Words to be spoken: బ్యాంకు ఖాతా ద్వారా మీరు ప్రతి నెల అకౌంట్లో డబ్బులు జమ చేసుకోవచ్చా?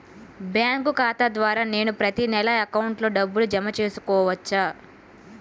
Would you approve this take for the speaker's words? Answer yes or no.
no